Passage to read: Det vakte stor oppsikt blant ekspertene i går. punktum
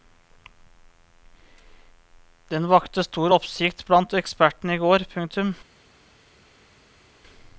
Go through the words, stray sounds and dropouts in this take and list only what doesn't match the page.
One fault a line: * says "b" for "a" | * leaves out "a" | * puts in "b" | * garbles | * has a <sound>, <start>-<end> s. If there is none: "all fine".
* says "Den" for "Det"